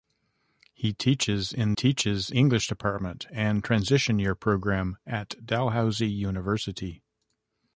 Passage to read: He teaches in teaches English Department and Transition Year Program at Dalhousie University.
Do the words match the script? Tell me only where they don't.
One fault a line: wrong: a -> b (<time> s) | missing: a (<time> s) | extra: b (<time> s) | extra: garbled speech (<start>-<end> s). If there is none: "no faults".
no faults